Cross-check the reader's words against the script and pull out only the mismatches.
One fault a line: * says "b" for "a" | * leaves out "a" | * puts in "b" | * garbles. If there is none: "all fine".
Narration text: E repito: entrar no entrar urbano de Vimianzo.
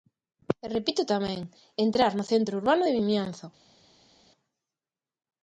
* puts in "tamén"
* says "centro" for "entrar"